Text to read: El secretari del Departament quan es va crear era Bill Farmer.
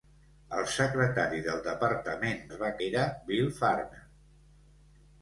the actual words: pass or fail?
fail